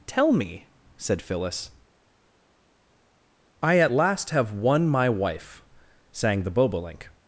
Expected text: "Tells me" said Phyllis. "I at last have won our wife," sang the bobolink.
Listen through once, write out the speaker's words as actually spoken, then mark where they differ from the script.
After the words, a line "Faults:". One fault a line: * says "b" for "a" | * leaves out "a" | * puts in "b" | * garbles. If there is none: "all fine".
"Tell me" said Phyllis. "I at last have won my wife," sang the bobolink.
Faults:
* says "Tell" for "Tells"
* says "my" for "our"